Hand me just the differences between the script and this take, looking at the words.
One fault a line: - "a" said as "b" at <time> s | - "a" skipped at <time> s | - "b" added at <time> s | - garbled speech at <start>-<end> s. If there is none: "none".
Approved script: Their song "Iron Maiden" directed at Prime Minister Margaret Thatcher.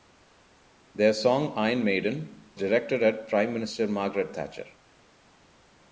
none